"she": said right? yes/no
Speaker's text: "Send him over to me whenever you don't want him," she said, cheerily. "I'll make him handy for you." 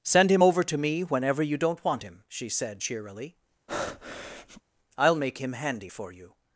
yes